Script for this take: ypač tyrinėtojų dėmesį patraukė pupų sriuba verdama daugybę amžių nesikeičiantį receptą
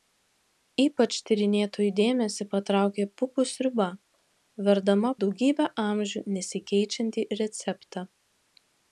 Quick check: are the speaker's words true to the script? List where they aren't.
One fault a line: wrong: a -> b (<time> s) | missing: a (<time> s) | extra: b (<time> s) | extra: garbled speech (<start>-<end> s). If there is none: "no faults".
no faults